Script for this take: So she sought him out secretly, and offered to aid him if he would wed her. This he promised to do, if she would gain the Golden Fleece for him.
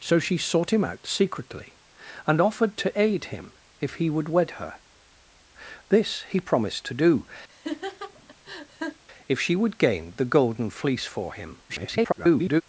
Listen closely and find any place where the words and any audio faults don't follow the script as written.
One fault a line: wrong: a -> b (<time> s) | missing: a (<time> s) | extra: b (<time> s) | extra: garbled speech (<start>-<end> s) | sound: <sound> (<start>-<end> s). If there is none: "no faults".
sound: laugh (7.5-9.0 s)
extra: garbled speech (11.7-12.6 s)